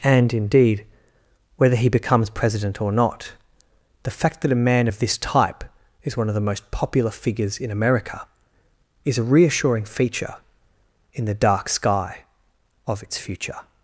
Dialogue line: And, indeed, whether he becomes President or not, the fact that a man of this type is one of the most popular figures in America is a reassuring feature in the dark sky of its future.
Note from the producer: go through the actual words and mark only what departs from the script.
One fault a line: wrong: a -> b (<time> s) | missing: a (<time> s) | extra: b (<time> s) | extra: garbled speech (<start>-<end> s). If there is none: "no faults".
no faults